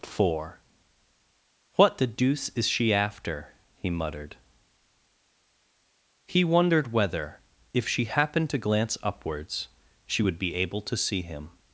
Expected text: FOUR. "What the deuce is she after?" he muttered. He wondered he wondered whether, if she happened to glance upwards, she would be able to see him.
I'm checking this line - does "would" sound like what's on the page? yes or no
yes